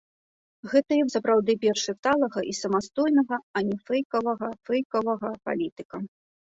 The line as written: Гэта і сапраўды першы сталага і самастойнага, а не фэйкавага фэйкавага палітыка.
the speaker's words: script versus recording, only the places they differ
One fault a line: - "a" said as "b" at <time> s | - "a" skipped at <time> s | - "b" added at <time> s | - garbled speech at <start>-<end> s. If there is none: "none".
none